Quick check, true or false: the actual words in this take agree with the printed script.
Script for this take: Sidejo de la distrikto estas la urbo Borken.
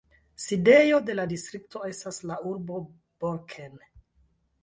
true